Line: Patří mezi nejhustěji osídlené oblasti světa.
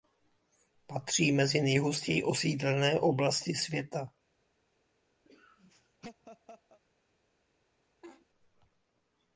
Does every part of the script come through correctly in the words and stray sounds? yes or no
no